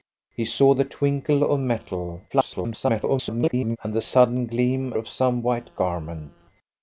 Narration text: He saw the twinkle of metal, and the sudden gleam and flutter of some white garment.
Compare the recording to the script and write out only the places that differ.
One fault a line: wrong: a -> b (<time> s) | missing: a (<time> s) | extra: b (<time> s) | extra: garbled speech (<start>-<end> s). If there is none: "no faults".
extra: garbled speech (2.3-3.8 s)
missing: and flutter (4.9 s)